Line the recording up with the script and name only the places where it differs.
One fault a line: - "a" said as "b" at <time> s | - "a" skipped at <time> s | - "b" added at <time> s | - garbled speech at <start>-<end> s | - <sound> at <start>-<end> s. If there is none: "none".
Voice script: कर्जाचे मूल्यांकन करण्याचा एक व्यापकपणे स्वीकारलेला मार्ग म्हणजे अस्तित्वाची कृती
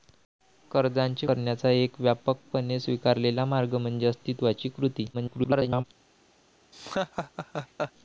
- "मूल्यांकन" skipped at 1.3 s
- garbled speech at 5.1-5.8 s
- laugh at 6.7-7.9 s